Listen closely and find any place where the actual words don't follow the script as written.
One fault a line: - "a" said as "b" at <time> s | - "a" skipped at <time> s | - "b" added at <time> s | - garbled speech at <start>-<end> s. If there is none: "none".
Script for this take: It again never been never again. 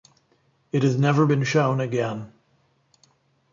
- "again" said as "has" at 0.8 s
- "never" said as "shown" at 1.4 s